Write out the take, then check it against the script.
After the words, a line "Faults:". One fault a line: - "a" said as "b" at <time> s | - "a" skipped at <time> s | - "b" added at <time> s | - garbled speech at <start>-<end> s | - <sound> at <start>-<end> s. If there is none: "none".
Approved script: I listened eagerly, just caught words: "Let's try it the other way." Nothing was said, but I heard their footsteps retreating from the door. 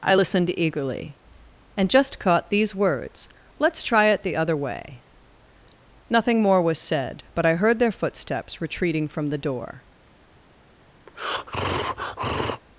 I listened eagerly, and just caught these words: "Let's try it the other way." Nothing more was said, but I heard their footsteps retreating from the door.
Faults:
- "and" added at 1.8 s
- "these" added at 2.5 s
- "more" added at 6.4 s
- breath at 11.1-12.6 s